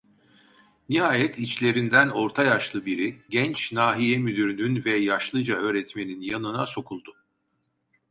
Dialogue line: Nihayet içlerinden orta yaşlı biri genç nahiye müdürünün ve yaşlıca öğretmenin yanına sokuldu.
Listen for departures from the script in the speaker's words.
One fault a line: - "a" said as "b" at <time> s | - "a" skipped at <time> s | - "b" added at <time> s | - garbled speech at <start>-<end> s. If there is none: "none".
none